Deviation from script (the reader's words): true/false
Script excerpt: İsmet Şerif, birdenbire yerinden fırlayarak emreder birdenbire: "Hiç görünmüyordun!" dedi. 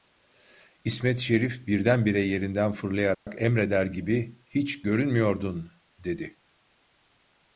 true